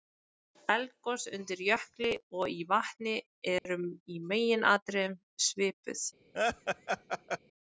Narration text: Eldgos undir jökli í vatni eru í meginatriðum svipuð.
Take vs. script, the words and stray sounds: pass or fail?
fail